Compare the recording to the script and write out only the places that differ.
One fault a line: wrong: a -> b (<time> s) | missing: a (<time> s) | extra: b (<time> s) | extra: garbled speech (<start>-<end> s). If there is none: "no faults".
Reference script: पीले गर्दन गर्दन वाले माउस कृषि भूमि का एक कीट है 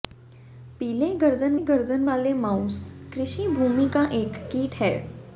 no faults